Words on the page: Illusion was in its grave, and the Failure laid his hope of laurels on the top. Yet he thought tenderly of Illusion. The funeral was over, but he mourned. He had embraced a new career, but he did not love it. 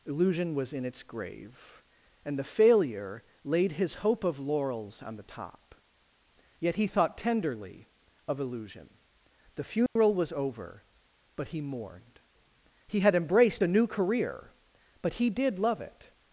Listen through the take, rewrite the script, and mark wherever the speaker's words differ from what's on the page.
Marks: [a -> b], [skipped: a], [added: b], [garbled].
Illusion was in its grave, and the Failure laid his hope of laurels on the top. Yet he thought tenderly of Illusion. The funeral was over, but he mourned. He had embraced a new career, but he did [skipped: not] love it.